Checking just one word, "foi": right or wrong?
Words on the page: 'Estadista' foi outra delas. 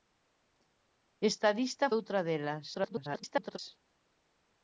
wrong